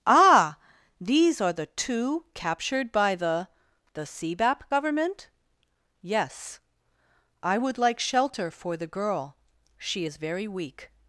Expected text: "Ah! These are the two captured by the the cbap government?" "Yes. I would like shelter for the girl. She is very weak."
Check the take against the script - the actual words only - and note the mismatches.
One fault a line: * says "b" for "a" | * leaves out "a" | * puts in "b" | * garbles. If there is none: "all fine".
all fine